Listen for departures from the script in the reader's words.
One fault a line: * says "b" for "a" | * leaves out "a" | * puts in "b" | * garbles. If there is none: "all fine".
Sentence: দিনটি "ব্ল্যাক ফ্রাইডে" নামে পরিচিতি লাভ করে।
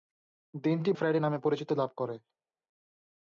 * leaves out "ব্ল্যাক"